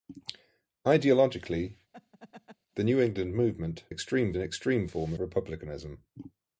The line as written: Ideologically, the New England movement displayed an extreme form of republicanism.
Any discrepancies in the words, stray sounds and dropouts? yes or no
yes